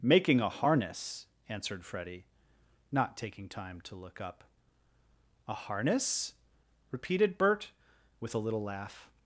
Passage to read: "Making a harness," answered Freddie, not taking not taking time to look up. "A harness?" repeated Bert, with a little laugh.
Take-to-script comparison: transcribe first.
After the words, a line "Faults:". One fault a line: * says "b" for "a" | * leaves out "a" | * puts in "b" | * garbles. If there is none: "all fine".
"Making a harness," answered Freddie, not taking time to look up. "A harness?" repeated Bert, with a little laugh.
Faults:
* leaves out "not taking"